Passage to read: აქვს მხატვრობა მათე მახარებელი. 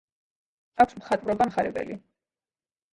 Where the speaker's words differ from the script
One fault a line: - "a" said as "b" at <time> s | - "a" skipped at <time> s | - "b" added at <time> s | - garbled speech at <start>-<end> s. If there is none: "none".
- "მათე" skipped at 1.5 s